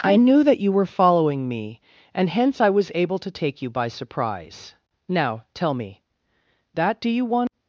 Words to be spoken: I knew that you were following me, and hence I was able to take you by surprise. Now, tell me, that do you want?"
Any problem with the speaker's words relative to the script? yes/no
no